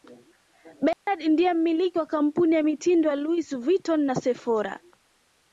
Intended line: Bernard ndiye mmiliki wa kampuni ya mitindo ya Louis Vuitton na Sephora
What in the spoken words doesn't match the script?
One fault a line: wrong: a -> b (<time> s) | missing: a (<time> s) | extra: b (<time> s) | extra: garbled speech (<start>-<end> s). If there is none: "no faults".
no faults